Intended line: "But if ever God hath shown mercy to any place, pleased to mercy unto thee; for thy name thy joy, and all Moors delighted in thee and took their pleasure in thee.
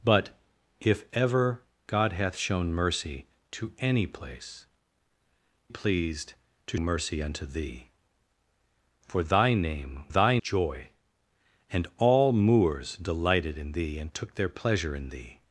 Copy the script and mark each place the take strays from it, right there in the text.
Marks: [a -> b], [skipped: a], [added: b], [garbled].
"But if ever God hath shown mercy to any place, pleased to mercy unto thee; for thy name thy joy, and all Moors delighted in thee and took their pleasure in thee.